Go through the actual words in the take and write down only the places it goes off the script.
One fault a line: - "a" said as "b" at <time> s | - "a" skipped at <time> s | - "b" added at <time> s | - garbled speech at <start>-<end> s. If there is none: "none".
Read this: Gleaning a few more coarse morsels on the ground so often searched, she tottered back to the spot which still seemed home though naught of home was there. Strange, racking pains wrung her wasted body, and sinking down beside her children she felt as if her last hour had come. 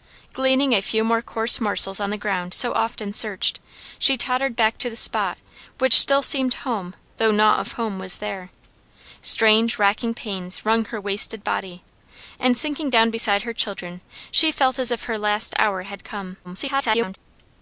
- garbled speech at 16.4-17.2 s